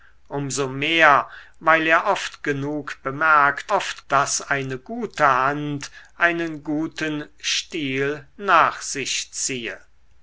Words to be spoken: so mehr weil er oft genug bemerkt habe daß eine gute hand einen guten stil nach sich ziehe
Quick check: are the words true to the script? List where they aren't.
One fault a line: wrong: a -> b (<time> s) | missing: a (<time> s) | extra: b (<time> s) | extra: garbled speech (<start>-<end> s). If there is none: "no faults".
wrong: habe -> oft (3.7 s)